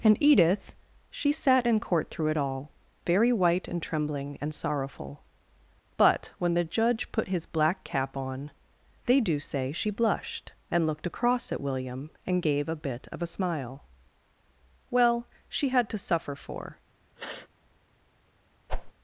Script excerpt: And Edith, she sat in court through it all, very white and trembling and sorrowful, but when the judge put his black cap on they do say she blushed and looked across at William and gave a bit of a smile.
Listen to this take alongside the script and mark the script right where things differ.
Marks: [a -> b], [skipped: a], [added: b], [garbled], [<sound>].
And Edith, she sat in court through it all, very white and trembling and sorrowful, but when the judge put his black cap on they do say she blushed and looked across at William and gave a bit of a smile. [added: Well she had to suffer for] [sniff] [whoosh]